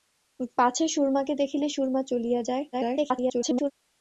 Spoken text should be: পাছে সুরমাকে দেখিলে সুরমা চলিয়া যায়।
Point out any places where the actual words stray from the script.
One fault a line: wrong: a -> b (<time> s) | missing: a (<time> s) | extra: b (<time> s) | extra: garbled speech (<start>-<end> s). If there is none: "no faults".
extra: garbled speech (2.7-3.7 s)